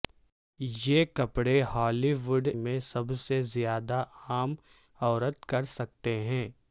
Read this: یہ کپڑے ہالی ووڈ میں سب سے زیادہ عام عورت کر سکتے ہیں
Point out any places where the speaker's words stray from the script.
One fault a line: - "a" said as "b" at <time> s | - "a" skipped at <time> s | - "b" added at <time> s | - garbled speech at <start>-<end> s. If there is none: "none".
none